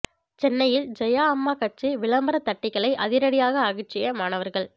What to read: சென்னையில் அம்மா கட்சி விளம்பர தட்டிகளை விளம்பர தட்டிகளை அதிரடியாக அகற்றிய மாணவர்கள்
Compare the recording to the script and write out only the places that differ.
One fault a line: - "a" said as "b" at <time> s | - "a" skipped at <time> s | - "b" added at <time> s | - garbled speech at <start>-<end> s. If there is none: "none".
- "ஜெயா" added at 1.0 s
- "விளம்பர தட்டிகளை" skipped at 2.9 s